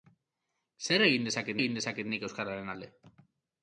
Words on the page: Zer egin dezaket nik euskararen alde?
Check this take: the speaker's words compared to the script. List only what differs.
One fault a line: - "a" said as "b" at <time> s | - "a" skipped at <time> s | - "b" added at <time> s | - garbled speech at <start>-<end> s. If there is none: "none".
- "egin dezaket" added at 1.6 s